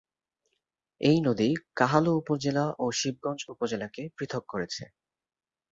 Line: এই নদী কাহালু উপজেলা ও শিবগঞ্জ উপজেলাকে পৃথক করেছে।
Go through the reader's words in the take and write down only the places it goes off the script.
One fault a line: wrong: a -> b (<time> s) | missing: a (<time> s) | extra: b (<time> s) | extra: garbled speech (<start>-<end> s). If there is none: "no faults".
no faults